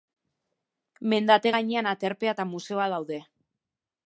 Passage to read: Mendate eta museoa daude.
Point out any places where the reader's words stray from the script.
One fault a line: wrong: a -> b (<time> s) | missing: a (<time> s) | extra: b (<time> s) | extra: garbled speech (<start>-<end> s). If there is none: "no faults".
extra: gainean aterpea (1.5 s)